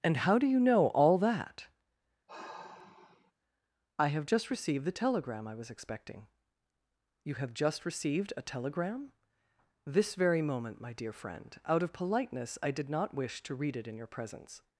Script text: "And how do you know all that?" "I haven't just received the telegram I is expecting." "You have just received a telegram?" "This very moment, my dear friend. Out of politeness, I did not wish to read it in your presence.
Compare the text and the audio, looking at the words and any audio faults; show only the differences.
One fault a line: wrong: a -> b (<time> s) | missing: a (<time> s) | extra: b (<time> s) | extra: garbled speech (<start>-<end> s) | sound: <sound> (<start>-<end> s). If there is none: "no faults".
sound: sigh (2.3-3.3 s)
wrong: haven't -> have (4.1 s)
wrong: is -> was (5.5 s)